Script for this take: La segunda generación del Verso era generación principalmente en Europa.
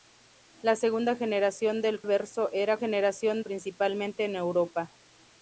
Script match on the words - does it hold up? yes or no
yes